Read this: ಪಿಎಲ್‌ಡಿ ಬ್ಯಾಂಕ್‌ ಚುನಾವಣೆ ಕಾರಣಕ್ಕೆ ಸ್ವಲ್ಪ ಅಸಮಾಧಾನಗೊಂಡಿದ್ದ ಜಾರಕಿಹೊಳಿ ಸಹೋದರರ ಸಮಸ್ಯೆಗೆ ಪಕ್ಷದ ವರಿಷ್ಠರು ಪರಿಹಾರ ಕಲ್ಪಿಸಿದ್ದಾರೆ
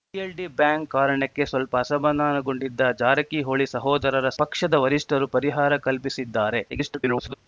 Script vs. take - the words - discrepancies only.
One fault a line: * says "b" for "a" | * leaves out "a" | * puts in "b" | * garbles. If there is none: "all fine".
* leaves out "ಚುನಾವಣೆ"
* leaves out "ಸಮಸ್ಯೆಗೆ"
* garbles